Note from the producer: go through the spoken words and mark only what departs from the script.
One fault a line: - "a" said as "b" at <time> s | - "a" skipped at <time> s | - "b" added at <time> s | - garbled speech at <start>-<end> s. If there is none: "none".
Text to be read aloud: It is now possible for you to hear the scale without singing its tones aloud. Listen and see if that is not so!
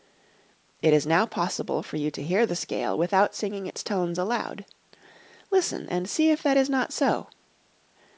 none